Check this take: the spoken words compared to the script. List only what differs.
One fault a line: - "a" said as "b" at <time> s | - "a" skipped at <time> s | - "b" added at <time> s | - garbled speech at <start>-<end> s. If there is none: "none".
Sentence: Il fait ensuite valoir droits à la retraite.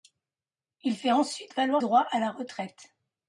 none